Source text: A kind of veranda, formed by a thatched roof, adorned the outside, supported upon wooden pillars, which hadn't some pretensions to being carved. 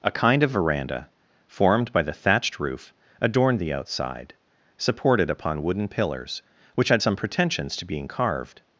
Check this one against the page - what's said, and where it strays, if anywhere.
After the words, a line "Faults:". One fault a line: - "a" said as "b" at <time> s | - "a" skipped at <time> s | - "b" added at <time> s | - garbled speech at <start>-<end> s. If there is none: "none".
A kind of veranda, formed by the thatched roof, adorned the outside, supported upon wooden pillars, which had some pretensions to being carved.
Faults:
- "a" said as "the" at 2.0 s
- "hadn't" said as "had" at 6.9 s